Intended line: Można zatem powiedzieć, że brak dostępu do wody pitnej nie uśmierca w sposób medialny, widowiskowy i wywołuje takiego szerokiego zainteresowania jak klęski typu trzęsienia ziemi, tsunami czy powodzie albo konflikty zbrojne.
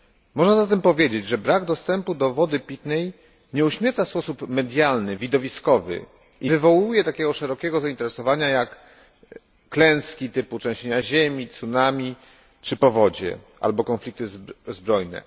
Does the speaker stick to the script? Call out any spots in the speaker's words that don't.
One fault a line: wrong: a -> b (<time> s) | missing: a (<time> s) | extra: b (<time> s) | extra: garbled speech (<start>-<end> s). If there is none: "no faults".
no faults